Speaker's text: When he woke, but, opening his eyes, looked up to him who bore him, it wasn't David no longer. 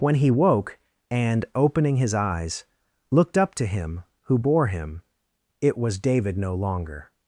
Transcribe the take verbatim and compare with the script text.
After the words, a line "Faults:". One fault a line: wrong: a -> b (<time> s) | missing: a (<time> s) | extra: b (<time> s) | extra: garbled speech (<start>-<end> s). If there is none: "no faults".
When he woke, and, opening his eyes, looked up to him who bore him, it was David no longer.
Faults:
wrong: but -> and (1.1 s)
wrong: wasn't -> was (5.8 s)